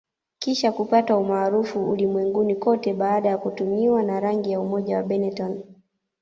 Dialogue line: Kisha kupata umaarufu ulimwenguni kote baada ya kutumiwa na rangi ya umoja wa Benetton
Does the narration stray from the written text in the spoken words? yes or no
no